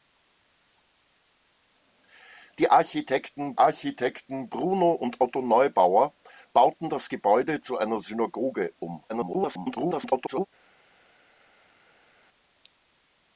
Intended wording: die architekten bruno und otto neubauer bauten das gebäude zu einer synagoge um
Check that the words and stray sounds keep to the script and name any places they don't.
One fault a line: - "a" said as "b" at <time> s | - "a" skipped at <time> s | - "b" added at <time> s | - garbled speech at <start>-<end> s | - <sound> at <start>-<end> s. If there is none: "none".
- "architekten" added at 3.6 s
- garbled speech at 9.1-10.5 s